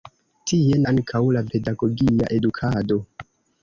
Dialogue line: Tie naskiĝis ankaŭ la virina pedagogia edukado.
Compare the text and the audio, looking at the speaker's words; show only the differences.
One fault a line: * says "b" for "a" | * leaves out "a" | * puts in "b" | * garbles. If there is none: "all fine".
* leaves out "naskiĝis"
* leaves out "virina"